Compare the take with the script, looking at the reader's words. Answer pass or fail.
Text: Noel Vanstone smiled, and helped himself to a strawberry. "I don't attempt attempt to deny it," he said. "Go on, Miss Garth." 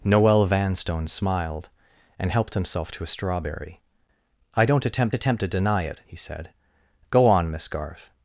pass